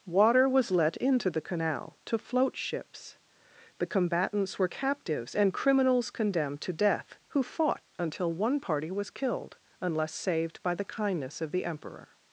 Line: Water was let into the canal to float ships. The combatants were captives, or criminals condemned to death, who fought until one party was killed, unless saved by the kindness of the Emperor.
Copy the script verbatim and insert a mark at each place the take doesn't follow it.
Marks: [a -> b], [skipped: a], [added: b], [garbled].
Water was let into the canal to float ships. The combatants were captives, [or -> and] criminals condemned to death, who fought until one party was killed, unless saved by the kindness of the Emperor.